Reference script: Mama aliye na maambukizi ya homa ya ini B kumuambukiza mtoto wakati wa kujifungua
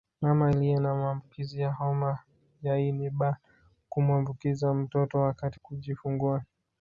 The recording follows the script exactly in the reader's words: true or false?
false